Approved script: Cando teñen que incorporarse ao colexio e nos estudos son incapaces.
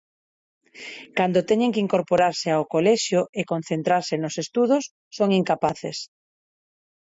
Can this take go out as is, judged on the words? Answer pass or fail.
fail